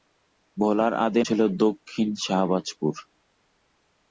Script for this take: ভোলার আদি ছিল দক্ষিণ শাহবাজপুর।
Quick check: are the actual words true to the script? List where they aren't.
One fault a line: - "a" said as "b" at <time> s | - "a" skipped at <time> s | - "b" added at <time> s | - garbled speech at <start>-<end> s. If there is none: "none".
none